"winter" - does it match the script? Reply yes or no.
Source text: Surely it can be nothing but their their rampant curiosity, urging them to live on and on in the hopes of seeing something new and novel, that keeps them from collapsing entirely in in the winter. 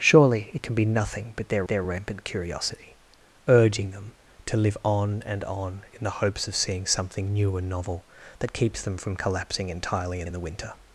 yes